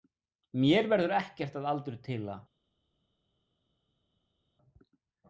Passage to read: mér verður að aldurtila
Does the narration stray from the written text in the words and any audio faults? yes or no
yes